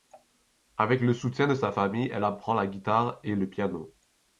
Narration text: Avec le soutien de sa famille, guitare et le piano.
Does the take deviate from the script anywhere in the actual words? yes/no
yes